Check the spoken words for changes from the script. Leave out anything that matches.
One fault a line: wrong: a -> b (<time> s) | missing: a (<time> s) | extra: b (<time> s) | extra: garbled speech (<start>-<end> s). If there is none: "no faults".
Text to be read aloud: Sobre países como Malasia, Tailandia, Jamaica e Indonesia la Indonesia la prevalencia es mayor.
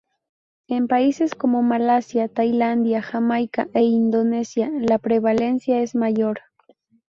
wrong: Sobre -> En (0.7 s)
missing: Indonesia la (5.0 s)